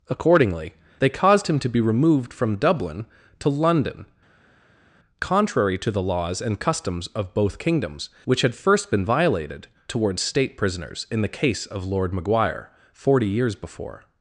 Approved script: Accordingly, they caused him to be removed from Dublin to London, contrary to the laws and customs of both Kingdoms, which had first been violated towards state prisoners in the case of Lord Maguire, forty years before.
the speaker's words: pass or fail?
pass